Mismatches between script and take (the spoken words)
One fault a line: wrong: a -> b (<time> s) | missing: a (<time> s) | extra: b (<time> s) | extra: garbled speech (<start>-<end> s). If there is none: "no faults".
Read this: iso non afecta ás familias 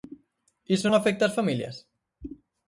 missing: non (0.9 s)